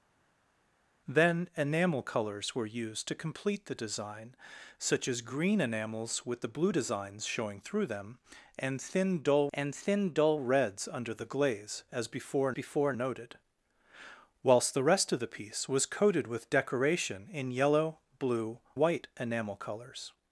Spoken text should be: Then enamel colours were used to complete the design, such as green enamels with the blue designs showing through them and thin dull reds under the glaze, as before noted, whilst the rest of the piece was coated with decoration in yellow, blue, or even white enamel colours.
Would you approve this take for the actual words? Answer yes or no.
no